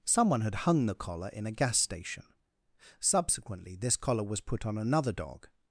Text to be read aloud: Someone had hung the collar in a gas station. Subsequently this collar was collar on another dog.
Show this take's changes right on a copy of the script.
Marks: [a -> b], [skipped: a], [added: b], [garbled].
Someone had hung the collar in a gas station. Subsequently this collar was [collar -> put] on another dog.